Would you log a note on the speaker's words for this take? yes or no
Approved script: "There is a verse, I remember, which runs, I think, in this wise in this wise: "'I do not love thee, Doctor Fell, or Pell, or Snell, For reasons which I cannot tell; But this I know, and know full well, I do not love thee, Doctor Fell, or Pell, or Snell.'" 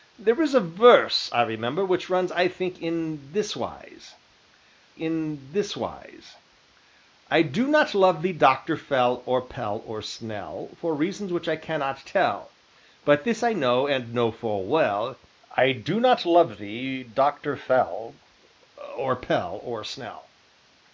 no